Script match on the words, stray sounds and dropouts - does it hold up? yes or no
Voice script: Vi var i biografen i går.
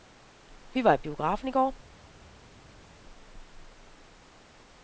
yes